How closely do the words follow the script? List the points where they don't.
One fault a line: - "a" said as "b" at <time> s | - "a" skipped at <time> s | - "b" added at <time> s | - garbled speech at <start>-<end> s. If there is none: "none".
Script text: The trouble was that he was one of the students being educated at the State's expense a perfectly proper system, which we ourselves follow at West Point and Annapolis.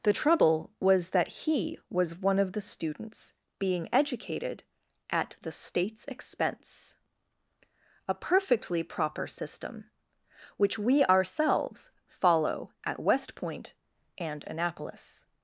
none